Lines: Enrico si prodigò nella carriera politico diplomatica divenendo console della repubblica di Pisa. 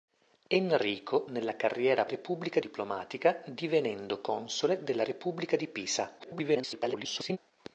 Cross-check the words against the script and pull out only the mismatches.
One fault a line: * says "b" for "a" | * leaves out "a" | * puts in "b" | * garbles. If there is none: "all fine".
* leaves out "si prodigò"
* says "repubblica" for "politico"
* garbles